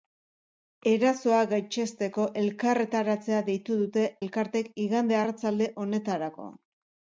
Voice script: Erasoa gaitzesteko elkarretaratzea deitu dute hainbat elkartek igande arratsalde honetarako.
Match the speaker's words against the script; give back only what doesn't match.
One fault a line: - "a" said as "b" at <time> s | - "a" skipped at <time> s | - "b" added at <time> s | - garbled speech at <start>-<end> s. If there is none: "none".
- "hainbat" skipped at 4.1 s